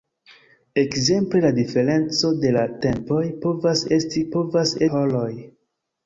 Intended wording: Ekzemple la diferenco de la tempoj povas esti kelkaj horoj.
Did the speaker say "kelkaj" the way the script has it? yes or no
no